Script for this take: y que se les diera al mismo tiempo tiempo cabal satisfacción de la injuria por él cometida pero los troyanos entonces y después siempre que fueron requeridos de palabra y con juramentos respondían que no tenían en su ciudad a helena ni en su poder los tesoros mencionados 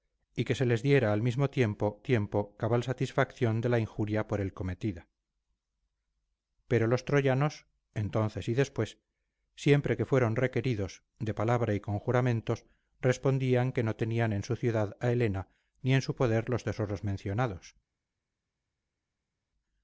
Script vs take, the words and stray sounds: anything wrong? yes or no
no